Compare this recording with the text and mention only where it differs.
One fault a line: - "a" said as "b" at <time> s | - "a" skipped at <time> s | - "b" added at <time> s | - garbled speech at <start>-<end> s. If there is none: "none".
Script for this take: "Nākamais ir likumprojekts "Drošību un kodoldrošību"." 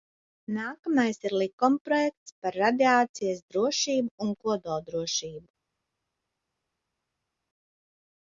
- "Par radiācijas" added at 2.5 s